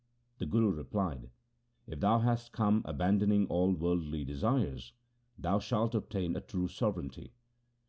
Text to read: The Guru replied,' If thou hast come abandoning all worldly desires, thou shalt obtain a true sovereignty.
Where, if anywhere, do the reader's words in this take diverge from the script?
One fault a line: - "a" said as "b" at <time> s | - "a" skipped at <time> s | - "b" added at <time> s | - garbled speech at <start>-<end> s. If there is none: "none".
none